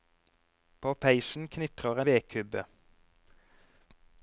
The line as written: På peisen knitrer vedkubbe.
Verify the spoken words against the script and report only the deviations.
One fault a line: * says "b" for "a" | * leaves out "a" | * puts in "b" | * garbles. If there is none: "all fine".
all fine